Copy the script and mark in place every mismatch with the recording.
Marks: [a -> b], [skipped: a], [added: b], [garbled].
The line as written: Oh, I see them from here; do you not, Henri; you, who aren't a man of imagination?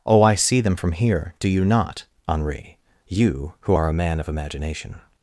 Oh, I see them from here; do you not, Henri; you, who [aren't -> are] a man of imagination?